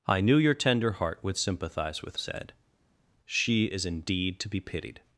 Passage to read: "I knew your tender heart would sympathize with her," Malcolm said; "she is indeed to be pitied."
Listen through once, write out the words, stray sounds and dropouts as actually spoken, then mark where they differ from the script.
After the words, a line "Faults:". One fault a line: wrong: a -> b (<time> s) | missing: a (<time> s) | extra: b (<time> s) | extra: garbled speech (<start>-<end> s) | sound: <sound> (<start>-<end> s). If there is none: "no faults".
"I knew your tender heart would sympathize with said; "she is indeed to be pitied."
Faults:
missing: her Malcolm (2.2 s)